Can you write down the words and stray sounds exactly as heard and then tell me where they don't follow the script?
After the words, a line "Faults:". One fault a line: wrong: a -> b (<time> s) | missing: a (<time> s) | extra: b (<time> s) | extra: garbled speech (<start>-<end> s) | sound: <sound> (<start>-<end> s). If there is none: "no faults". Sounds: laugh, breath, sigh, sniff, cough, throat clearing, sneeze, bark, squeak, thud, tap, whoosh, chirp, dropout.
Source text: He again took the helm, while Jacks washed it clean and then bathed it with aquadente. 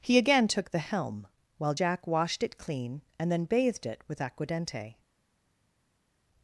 He again took the helm, while Jack washed it clean and then bathed it with aquadente.
Faults:
wrong: Jacks -> Jack (1.7 s)